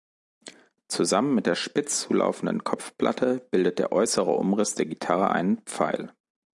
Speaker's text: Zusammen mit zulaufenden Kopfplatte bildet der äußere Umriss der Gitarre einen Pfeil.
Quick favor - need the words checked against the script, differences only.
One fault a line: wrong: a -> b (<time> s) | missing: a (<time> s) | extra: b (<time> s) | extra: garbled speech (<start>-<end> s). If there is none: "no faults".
extra: der spitz (1.5 s)